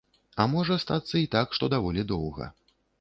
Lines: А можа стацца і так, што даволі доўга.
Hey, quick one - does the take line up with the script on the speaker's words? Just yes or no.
yes